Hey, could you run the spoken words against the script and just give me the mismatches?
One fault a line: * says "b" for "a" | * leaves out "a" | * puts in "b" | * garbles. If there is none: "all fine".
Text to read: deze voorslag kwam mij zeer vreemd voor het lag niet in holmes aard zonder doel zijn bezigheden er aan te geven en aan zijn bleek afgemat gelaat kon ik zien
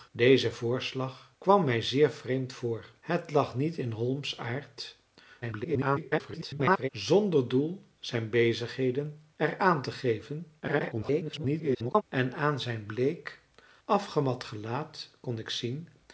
* garbles
* garbles